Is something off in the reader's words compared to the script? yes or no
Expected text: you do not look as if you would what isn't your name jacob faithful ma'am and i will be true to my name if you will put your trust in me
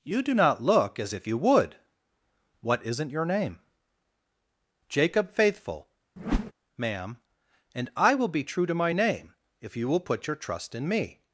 no